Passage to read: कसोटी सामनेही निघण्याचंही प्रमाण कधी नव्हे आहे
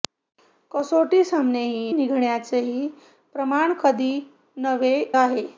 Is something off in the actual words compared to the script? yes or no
no